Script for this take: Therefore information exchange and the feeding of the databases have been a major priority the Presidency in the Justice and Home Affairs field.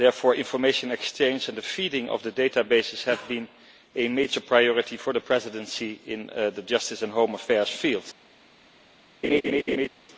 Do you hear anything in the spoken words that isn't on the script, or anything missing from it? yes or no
yes